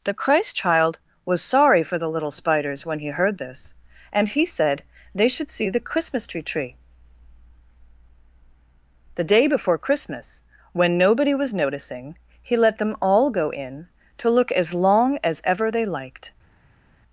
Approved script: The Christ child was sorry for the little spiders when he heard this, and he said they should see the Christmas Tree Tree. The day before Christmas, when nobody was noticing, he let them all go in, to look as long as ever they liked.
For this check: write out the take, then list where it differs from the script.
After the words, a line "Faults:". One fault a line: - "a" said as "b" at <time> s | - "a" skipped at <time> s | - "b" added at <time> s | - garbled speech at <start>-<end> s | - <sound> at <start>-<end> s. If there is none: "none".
The Christ child was sorry for the little spiders when he heard this, and he said they should see the Christmas Tree Tree. The day before Christmas, when nobody was noticing, he let them all go in, to look as long as ever they liked.
Faults:
none